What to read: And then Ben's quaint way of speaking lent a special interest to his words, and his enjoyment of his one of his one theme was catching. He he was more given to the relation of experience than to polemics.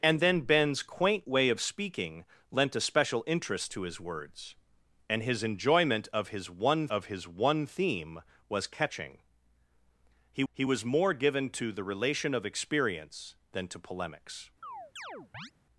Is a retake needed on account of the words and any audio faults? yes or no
yes